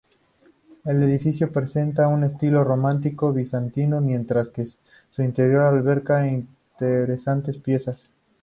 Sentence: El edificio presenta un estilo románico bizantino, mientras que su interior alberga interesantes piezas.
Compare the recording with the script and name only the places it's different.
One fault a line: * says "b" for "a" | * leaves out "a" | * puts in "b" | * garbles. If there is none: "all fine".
all fine